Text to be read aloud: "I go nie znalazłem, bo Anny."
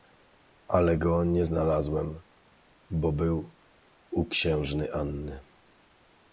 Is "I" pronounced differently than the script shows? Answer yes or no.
yes